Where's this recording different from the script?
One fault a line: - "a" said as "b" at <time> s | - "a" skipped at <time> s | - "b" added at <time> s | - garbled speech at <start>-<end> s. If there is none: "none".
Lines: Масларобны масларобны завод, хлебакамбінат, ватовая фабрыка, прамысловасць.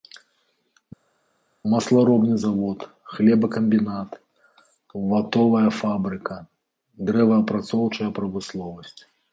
- "масларобны" skipped at 2.4 s
- "дрэваапрацоўчая" added at 7.1 s